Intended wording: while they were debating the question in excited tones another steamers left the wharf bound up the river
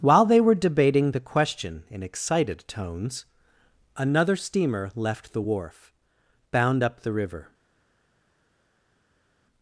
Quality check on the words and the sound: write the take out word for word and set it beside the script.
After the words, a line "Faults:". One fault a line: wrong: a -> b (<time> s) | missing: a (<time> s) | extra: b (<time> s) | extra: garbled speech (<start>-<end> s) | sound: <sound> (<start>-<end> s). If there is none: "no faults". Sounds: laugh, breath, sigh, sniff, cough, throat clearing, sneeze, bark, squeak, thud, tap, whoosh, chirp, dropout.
while they were debating the question in excited tones another steamer left the wharf bound up the river
Faults:
wrong: steamers -> steamer (4.3 s)